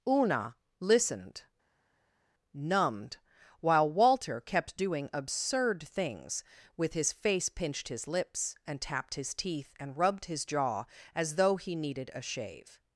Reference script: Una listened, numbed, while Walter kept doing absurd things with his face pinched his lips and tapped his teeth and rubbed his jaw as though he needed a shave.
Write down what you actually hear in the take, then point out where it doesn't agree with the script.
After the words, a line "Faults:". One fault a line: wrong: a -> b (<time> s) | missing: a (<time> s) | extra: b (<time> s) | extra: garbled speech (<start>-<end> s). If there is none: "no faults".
Una listened, numbed, while Walter kept doing absurd things with his face pinched his lips and tapped his teeth and rubbed his jaw as though he needed a shave.
Faults:
no faults